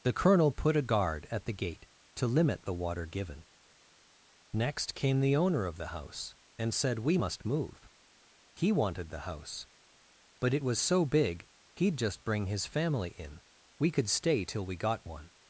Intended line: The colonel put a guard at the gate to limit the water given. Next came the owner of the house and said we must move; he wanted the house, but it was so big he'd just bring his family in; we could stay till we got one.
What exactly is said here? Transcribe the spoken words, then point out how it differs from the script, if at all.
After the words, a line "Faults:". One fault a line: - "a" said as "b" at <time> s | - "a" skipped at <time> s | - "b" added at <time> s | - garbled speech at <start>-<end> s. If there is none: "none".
The colonel put a guard at the gate to limit the water given. Next came the owner of the house and said we must move; he wanted the house, but it was so big he'd just bring his family in; we could stay till we got one.
Faults:
none